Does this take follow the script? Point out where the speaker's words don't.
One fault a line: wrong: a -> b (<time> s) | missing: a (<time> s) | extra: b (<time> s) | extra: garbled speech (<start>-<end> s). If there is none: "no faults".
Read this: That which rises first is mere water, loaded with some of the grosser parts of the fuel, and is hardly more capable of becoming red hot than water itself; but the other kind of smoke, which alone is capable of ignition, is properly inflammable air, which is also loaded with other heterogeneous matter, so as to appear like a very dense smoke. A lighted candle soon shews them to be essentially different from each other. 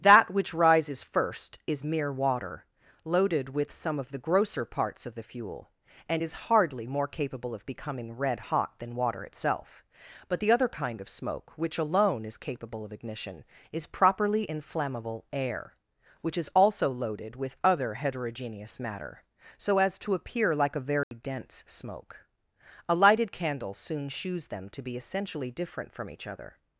no faults